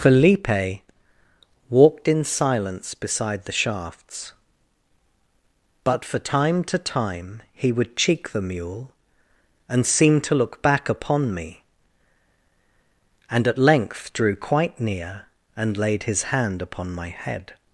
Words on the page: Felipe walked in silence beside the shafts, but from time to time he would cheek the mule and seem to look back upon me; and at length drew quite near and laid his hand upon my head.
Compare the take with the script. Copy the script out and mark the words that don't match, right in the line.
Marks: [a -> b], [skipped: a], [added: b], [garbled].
Felipe walked in silence beside the shafts, but [from -> for] time to time he would cheek the mule and seem to look back upon me; and at length drew quite near and laid his hand upon my head.